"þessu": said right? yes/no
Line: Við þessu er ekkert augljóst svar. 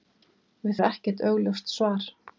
no